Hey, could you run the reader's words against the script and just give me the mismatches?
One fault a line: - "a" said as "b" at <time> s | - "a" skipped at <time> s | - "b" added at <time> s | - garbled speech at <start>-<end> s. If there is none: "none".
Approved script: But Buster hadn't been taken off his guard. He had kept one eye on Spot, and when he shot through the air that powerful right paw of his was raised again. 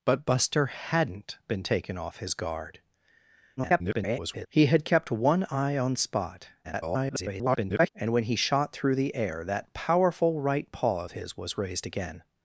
- garbled speech at 3.6-4.5 s
- garbled speech at 6.6-7.9 s